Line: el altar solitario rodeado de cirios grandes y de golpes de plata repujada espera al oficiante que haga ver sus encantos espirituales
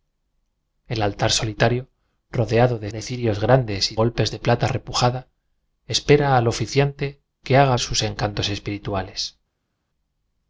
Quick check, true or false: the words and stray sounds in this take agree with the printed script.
false